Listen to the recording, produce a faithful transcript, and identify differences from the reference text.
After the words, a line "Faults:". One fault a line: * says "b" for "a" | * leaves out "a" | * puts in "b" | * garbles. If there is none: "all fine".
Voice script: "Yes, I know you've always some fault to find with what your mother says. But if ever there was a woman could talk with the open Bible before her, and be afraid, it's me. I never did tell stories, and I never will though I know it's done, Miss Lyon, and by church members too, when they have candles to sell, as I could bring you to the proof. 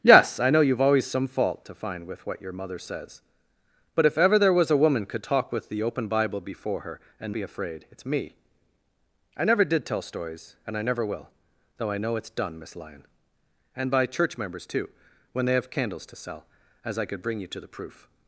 "Yes, I know you've always some fault to find with what your mother says. But if ever there was a woman could talk with the open Bible before her, and be afraid, it's me. I never did tell stories, and I never will though I know it's done, Miss Lyon, and by church members too, when they have candles to sell, as I could bring you to the proof.
Faults:
all fine